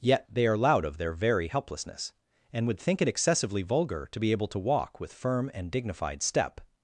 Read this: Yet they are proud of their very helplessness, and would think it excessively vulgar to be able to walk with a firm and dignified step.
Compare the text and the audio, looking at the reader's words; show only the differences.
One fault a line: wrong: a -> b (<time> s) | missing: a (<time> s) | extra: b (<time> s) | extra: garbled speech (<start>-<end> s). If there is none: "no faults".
wrong: proud -> loud (0.6 s)
missing: a (5.1 s)